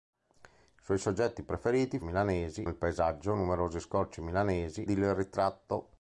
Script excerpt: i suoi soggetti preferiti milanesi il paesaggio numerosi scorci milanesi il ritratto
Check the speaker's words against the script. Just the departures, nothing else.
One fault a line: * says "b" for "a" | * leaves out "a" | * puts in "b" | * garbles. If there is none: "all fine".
all fine